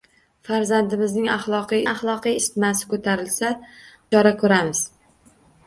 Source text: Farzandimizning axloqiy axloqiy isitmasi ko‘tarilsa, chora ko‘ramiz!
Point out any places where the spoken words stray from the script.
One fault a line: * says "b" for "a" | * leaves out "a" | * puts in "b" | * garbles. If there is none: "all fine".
all fine